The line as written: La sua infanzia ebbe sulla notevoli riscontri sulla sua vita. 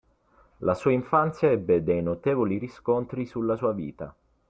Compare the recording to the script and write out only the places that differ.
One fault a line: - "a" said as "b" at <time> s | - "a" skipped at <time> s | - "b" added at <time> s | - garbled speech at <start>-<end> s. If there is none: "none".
- "sulla" said as "dei" at 1.8 s